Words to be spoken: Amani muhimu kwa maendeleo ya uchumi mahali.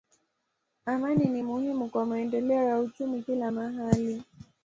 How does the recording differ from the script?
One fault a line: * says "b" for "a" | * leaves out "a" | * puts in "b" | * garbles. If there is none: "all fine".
* puts in "ni"
* puts in "kila"